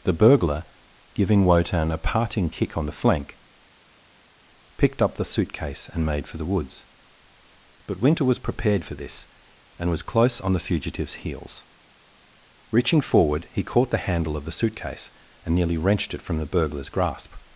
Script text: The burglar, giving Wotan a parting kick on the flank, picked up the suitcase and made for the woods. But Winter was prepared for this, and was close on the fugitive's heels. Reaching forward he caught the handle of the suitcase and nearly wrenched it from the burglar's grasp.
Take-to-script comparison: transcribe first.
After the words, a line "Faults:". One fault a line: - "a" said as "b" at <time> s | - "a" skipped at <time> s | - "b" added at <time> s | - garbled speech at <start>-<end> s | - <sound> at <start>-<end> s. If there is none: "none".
The burglar, giving Wotan a parting kick on the flank, picked up the suitcase and made for the woods. But Winter was prepared for this, and was close on the fugitive's heels. Reaching forward he caught the handle of the suitcase and nearly wrenched it from the burglar's grasp.
Faults:
none